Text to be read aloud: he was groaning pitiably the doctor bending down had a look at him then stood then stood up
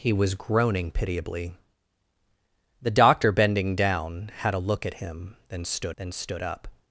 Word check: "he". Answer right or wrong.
right